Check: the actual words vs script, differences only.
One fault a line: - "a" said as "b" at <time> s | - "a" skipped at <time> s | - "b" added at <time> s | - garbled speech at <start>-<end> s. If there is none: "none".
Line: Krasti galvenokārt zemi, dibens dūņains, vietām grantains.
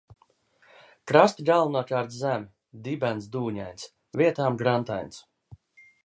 none